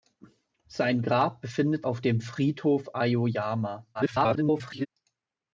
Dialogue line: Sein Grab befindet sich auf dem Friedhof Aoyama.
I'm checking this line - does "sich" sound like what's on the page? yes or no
no